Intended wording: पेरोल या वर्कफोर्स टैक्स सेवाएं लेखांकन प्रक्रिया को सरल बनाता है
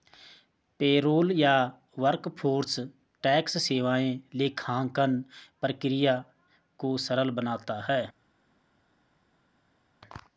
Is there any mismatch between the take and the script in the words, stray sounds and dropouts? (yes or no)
no